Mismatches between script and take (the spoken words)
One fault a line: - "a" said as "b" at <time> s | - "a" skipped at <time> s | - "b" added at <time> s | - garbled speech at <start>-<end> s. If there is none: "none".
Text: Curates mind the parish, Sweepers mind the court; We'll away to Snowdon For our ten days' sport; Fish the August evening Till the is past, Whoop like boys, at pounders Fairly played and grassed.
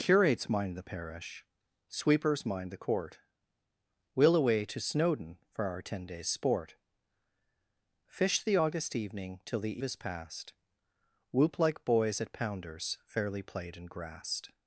none